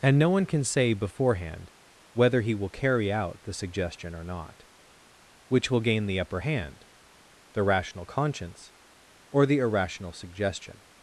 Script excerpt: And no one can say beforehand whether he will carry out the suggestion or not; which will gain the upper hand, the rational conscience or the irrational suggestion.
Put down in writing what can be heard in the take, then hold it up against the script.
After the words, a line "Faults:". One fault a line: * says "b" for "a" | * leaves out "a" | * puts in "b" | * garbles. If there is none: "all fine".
And no one can say beforehand whether he will carry out the suggestion or not; which will gain the upper hand, the rational conscience or the irrational suggestion.
Faults:
all fine